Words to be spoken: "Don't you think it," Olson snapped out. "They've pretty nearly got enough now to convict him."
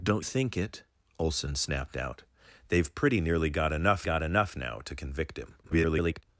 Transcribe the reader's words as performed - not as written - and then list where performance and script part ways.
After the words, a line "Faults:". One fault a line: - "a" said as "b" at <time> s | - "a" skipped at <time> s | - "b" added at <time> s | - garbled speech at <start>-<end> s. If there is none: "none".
"Don't think it," Olson snapped out. "They've pretty nearly got enough got enough now to convict him." [garbled]
Faults:
- "you" skipped at 0.2 s
- "got enough" added at 4.0 s
- garbled speech at 5.6-6.2 s